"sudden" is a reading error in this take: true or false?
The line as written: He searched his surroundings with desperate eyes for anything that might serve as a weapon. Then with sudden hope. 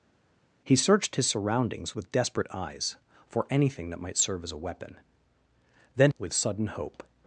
false